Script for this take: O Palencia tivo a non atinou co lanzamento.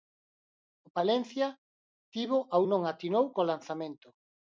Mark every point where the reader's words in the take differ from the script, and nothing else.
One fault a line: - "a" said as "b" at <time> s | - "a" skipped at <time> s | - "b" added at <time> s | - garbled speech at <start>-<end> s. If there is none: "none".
none